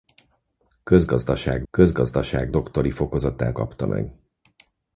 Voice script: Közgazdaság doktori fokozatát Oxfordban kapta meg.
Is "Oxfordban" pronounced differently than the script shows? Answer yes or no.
yes